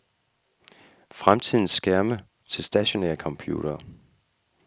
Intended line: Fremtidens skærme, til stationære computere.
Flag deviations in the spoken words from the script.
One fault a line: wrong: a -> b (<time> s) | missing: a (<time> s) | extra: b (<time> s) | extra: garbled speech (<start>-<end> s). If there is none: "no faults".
no faults